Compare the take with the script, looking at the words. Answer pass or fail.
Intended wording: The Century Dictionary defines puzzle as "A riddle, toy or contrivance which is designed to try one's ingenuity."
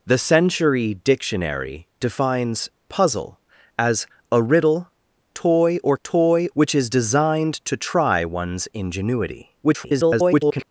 fail